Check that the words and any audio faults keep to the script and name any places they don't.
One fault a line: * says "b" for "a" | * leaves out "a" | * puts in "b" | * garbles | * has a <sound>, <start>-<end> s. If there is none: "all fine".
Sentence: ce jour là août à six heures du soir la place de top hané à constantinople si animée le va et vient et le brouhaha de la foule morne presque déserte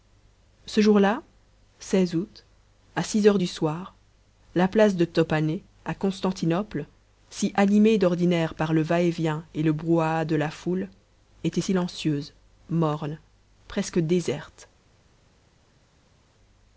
* puts in "d'ordinaire par"
* puts in "était silencieuse"